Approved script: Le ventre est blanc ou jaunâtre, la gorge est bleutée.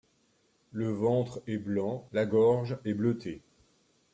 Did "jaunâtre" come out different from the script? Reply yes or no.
yes